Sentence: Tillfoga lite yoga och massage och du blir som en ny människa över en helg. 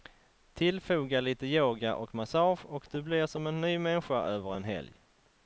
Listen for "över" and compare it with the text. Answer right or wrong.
right